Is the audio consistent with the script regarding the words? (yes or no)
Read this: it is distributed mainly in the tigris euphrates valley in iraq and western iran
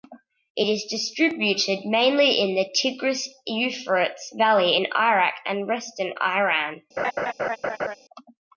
yes